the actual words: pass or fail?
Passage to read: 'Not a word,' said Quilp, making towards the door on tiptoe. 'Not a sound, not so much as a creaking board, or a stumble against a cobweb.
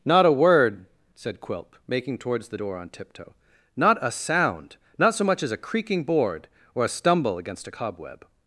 pass